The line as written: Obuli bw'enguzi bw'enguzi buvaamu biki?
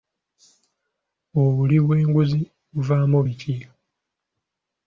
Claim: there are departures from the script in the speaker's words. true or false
true